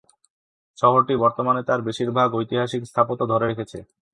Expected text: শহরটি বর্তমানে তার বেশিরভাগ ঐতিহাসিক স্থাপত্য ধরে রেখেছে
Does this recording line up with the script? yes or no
yes